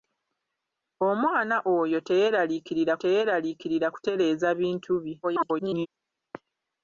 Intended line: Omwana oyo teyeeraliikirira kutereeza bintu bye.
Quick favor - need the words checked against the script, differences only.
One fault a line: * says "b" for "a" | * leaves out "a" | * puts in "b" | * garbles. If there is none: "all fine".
* puts in "teyeeraliikirira"
* garbles